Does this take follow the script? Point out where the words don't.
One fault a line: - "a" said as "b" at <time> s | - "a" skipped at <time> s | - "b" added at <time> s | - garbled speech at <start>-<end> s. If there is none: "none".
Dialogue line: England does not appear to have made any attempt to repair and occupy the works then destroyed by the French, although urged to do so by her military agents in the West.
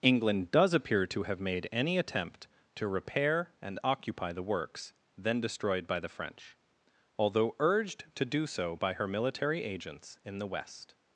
- "not" skipped at 0.7 s